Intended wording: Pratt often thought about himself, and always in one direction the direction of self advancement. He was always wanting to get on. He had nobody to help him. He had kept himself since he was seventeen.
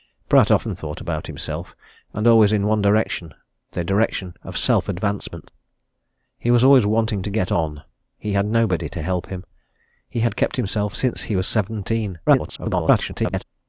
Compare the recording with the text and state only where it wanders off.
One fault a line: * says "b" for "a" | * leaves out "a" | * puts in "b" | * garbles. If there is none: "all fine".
* garbles